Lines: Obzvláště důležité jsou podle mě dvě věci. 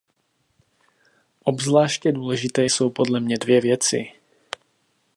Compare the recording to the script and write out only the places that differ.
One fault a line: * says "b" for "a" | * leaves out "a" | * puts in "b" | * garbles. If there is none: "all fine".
all fine